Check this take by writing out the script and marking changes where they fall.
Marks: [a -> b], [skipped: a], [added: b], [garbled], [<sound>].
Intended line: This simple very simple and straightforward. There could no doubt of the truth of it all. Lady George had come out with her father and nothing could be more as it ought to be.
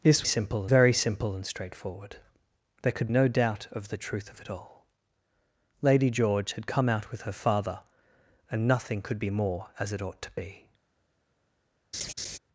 This simple very simple and straightforward. There could no doubt of the truth of it all. Lady George had come out with her father and nothing could be more as it ought to be. [laugh]